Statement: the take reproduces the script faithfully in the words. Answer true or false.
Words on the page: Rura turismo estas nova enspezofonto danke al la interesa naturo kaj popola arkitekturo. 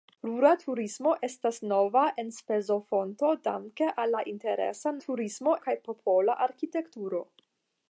false